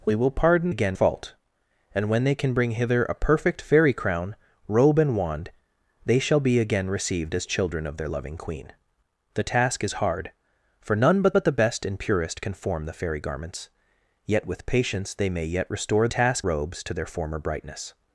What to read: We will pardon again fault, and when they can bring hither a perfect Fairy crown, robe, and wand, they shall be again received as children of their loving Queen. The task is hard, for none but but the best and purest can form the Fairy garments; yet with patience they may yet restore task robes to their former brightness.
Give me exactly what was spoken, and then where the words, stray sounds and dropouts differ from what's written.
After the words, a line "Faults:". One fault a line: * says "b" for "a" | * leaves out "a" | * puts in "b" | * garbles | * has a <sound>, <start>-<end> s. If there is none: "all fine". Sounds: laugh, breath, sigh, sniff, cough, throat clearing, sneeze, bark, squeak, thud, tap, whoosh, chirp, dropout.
We will pardon again fault, and when they can bring hither a perfect Fairy crown, robe, and wand, they shall be again received as children of their loving Queen. The task is hard, for none but but the best and purest can form the Fairy garments; yet with patience they may yet restore task robes to their former brightness.
Faults:
all fine